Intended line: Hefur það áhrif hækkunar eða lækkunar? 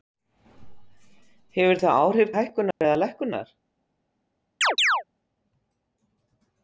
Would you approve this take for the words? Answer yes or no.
yes